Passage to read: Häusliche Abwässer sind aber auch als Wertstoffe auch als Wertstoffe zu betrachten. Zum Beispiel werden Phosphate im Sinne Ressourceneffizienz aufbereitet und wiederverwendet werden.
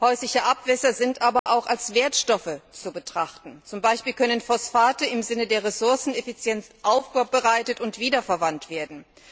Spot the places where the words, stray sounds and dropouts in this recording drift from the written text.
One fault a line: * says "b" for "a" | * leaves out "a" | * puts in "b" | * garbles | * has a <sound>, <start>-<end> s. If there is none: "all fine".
* has a dropout, 1.4-1.5 s
* leaves out "auch als Wertstoffe"
* says "können" for "werden"
* puts in "der"